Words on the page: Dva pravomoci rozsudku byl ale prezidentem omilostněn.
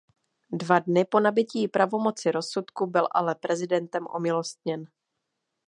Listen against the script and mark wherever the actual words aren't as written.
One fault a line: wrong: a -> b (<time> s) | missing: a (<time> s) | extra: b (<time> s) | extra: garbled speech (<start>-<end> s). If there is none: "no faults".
extra: dny po nabytí (0.8 s)